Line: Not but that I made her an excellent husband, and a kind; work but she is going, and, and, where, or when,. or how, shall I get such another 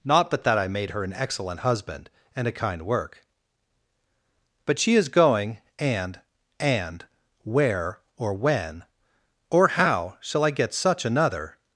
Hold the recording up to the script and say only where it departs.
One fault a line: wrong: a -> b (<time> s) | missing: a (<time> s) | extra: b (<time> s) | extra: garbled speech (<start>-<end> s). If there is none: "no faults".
no faults